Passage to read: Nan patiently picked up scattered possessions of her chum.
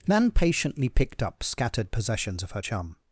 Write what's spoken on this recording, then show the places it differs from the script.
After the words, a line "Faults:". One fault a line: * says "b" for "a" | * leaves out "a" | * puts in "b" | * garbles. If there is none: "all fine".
Nan patiently picked up scattered possessions of her chum.
Faults:
all fine